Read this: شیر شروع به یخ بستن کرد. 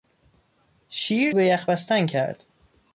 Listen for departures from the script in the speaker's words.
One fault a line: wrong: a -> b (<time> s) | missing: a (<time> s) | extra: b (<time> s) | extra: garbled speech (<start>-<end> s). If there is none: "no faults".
missing: شروع (1.3 s)